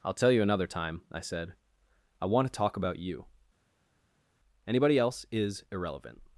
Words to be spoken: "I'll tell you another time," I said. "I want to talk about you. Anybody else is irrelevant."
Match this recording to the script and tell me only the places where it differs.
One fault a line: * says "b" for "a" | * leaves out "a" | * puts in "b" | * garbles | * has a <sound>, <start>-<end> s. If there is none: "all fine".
all fine